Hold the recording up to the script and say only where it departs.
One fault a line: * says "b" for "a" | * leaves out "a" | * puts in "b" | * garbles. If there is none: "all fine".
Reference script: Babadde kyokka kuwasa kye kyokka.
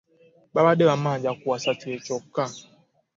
* says "bammanja" for "kyokka"